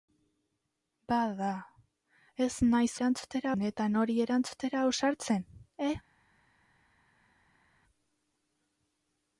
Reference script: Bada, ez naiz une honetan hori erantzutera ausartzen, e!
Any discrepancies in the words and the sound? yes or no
yes